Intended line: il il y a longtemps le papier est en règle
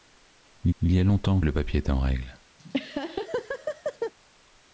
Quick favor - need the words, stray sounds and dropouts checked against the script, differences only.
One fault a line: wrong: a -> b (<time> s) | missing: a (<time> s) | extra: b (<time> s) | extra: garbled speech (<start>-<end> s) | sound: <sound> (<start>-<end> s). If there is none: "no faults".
sound: laugh (2.6-4.1 s)